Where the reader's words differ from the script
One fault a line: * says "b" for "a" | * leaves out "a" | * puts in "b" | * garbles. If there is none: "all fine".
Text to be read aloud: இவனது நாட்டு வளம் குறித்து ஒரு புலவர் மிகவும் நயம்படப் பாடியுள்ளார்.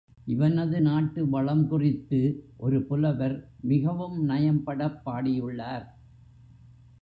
all fine